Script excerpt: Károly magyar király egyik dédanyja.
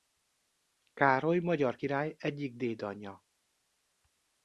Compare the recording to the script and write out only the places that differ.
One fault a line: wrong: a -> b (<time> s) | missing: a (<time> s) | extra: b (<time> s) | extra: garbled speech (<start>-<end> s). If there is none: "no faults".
no faults